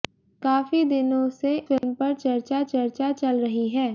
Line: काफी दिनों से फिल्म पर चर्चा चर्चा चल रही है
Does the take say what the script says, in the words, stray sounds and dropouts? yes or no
no